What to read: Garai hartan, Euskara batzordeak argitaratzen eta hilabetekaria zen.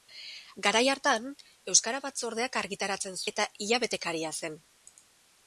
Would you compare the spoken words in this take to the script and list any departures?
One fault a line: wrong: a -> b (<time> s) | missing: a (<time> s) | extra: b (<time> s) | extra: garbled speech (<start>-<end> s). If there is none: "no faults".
no faults